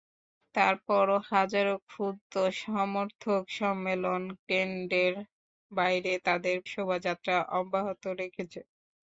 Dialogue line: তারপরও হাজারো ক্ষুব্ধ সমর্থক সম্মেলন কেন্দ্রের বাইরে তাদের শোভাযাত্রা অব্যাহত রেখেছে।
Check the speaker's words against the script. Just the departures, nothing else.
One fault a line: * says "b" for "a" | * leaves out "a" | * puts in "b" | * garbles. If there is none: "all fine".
all fine